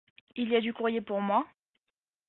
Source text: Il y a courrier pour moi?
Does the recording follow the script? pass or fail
fail